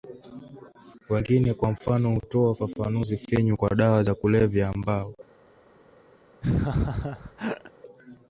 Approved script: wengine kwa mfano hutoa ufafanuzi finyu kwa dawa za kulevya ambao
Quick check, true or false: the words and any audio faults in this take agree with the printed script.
false